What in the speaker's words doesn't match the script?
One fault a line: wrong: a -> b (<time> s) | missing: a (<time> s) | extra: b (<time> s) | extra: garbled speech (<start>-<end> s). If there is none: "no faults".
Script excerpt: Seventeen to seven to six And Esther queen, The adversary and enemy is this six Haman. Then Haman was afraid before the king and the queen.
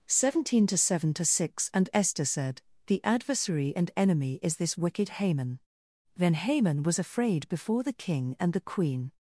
wrong: queen -> said (2.2 s)
wrong: six -> wicked (4.8 s)